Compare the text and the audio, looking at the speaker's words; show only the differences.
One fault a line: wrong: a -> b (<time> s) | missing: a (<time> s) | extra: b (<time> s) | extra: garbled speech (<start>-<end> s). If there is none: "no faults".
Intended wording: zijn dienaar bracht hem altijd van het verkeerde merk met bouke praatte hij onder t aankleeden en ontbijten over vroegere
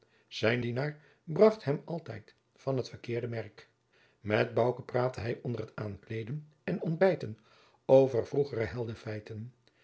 no faults